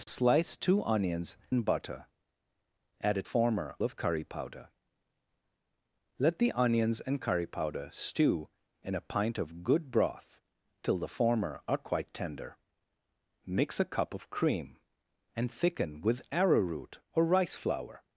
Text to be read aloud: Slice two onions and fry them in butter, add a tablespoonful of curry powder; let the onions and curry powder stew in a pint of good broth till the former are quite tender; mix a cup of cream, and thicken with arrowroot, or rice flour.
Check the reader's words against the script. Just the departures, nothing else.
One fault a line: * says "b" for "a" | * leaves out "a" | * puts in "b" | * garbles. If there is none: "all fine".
* leaves out "and fry them"
* says "former" for "tablespoonful"